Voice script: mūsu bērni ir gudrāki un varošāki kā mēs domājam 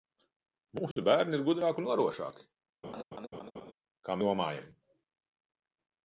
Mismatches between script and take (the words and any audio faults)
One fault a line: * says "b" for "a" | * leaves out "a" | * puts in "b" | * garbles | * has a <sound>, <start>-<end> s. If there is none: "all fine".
* has a dropout, 0.9-1.0 s
* has a laugh, 2.8-3.7 s
* leaves out "mēs"